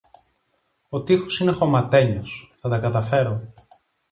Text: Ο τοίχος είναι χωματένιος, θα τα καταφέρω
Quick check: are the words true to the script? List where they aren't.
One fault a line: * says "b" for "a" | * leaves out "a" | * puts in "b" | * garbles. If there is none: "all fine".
all fine